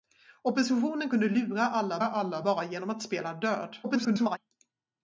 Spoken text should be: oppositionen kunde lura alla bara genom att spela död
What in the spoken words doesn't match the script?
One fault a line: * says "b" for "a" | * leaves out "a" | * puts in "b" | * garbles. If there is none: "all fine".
* puts in "alla"
* garbles